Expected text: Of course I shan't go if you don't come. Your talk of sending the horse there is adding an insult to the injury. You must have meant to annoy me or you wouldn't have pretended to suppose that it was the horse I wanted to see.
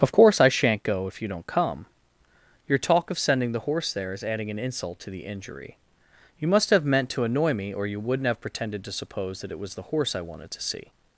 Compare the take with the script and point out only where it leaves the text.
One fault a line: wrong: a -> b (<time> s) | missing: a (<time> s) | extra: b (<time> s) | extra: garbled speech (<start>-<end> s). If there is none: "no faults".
no faults